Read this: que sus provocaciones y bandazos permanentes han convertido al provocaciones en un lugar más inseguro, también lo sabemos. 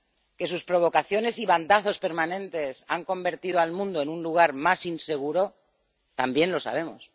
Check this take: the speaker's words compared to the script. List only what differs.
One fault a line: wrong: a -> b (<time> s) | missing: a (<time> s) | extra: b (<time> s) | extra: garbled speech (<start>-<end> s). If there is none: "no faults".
wrong: provocaciones -> mundo (3.7 s)